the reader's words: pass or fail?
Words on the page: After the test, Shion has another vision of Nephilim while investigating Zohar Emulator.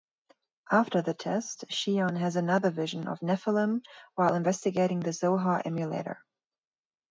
fail